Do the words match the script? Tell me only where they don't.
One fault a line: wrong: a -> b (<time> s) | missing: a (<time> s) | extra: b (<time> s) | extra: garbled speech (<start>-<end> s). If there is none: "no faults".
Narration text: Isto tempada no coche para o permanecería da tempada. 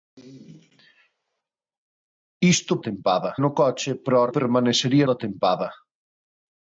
no faults